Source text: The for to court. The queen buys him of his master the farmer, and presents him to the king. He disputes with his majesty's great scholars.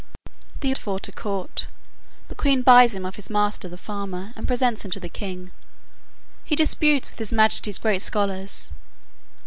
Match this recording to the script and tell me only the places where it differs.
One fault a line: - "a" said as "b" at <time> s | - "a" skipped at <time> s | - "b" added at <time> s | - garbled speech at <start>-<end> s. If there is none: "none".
none